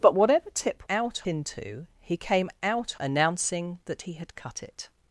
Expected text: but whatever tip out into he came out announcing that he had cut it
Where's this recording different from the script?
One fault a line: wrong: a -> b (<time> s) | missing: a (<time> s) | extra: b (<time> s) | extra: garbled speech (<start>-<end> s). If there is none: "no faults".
no faults